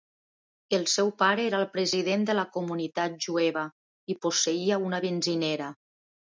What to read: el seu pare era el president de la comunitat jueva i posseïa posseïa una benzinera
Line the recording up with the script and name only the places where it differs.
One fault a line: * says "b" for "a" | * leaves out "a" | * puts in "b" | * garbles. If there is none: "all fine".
* leaves out "posseïa"